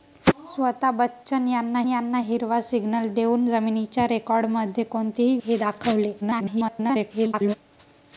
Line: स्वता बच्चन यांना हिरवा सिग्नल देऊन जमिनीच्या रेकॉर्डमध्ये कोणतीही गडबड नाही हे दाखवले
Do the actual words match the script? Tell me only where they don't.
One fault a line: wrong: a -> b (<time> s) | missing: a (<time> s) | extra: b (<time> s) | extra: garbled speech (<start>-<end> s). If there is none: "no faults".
extra: यांना (1.9 s)
missing: गडबड नाही (5.4 s)
extra: garbled speech (6.2-7.5 s)